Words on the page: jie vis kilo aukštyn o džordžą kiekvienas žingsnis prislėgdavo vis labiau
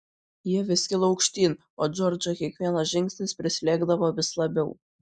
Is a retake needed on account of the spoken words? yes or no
no